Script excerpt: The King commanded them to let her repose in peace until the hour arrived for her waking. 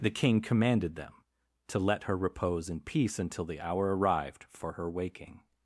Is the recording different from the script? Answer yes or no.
no